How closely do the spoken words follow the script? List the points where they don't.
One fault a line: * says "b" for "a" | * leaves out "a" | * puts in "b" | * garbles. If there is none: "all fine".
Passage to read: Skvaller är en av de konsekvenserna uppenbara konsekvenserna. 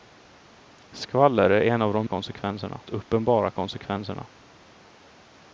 all fine